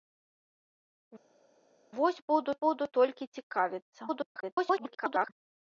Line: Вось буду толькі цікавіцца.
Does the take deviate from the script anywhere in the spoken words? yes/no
yes